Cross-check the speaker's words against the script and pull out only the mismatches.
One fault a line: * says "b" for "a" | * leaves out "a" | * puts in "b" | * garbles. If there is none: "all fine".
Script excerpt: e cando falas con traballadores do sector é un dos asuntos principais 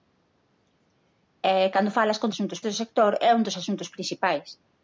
* says "asuntos" for "traballadores"